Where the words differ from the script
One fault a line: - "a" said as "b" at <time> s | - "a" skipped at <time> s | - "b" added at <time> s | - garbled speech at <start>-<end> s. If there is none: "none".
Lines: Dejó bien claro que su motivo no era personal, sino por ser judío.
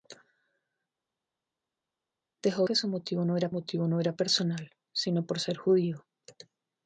- "bien claro que su" said as "que su motivo no era" at 2.6 s